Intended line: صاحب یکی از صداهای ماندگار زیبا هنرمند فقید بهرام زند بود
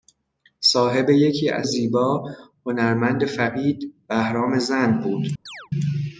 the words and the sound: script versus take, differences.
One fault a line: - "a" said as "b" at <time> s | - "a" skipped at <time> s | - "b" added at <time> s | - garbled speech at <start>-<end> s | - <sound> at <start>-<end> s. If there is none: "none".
- "صداهای ماندگار" skipped at 1.7 s
- chirp at 5.5-5.7 s